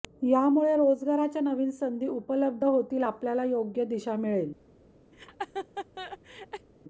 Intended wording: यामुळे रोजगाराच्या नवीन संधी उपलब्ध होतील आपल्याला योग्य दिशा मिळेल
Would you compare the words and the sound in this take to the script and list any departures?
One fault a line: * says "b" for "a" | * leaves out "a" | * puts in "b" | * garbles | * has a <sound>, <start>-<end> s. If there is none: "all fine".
* has a laugh, 5.1-6.7 s